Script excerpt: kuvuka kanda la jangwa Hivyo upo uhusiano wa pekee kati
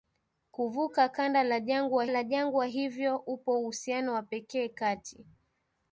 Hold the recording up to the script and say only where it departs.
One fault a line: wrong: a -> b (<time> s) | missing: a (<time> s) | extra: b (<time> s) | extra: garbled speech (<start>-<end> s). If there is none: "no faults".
extra: la jangwa (2.1 s)